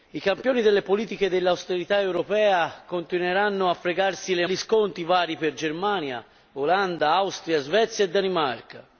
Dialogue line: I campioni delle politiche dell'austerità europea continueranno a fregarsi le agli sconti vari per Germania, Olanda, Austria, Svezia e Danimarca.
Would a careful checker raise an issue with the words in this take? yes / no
no